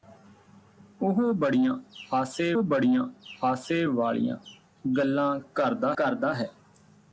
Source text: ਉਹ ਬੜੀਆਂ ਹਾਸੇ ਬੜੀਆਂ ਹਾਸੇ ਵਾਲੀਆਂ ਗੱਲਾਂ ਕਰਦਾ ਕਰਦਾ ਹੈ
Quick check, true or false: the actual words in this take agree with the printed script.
true